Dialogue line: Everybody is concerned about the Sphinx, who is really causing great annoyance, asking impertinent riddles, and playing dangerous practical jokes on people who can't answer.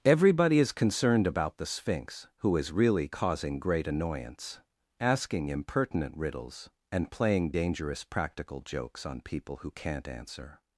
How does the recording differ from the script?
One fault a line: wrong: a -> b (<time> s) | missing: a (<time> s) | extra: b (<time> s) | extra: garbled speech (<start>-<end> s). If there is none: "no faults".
no faults